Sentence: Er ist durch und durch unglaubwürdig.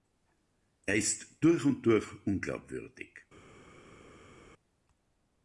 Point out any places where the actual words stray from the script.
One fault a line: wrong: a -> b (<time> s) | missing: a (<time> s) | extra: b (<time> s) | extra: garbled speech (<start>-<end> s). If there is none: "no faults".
no faults